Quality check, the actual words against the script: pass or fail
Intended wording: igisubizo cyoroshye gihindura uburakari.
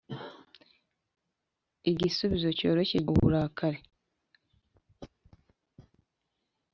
fail